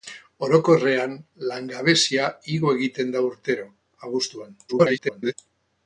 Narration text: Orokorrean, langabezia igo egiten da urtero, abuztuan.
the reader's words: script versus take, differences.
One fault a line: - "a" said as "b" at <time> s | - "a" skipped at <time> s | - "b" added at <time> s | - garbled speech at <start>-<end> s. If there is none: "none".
- garbled speech at 4.7-5.3 s